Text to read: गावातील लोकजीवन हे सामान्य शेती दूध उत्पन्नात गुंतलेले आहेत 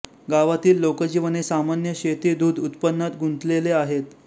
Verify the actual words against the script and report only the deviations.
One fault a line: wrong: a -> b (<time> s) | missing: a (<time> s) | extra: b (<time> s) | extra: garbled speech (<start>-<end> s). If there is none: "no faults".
no faults